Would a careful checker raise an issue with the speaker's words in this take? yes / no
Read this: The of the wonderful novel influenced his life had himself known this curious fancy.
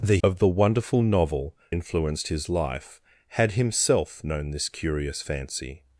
no